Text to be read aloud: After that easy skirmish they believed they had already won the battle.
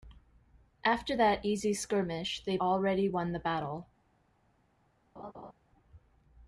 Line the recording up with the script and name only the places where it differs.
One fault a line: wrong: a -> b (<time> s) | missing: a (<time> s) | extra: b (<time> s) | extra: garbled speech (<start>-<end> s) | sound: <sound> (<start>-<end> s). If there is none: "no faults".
missing: believed they had (2.6 s)
sound: laugh (5.2-5.5 s)